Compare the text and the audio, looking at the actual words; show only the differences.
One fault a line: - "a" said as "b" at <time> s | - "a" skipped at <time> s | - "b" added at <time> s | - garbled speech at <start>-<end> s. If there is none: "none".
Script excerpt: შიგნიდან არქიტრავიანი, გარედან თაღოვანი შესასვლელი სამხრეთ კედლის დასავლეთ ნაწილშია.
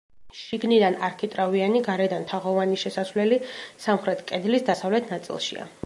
none